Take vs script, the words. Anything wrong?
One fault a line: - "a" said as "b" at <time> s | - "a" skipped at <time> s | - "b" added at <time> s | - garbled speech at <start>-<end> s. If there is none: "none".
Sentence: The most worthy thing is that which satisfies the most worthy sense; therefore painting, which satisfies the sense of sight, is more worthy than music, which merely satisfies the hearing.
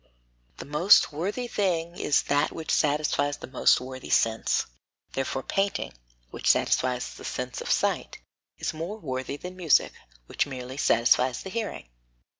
none